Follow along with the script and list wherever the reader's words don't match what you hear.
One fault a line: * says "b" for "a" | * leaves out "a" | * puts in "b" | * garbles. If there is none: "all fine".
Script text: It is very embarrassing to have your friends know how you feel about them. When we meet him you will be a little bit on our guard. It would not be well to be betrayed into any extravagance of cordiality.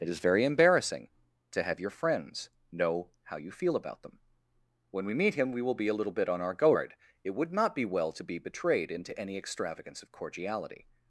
* says "we" for "you"